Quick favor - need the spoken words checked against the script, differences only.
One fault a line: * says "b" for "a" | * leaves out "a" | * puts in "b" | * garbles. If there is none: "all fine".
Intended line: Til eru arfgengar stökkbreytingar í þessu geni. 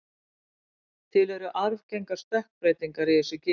all fine